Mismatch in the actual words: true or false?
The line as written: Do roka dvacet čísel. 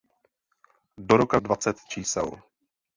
false